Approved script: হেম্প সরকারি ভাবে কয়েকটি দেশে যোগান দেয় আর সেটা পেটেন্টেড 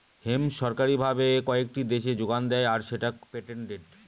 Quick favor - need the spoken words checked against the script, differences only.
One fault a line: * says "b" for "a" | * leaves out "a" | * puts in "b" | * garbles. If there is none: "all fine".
all fine